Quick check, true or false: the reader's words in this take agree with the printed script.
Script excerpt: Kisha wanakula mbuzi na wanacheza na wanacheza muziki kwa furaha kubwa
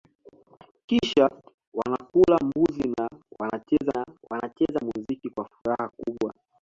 true